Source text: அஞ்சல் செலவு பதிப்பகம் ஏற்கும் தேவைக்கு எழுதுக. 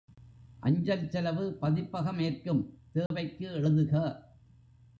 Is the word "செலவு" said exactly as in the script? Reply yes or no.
yes